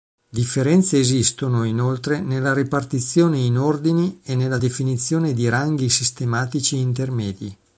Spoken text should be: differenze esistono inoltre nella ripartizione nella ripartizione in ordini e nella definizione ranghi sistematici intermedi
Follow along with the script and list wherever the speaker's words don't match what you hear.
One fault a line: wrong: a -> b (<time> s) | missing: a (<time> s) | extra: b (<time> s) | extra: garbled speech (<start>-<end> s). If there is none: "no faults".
missing: nella ripartizione (3.4 s)
extra: di (5.3 s)